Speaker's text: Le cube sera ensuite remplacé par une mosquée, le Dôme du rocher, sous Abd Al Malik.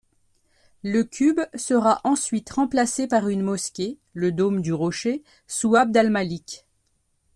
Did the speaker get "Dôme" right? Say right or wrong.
right